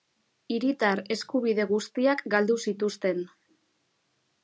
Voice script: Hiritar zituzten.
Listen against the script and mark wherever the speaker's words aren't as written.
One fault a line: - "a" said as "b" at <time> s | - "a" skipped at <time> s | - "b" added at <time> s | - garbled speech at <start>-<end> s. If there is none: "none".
- "eskubide guztiak galdu" added at 1.2 s